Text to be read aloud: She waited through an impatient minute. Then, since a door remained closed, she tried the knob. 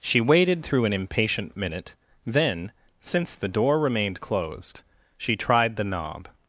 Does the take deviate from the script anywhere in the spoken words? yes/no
yes